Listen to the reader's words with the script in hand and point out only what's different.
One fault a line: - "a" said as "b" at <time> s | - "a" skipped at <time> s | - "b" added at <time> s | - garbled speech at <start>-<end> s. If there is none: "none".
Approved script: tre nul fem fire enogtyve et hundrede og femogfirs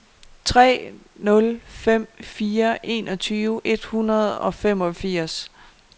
none